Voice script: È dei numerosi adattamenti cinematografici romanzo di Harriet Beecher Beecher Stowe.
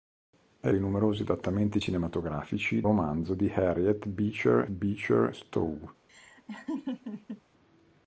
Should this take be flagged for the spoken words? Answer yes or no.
no